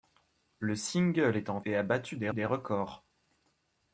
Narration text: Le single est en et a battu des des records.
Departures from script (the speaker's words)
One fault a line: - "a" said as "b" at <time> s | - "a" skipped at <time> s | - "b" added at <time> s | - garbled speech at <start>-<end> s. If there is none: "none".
none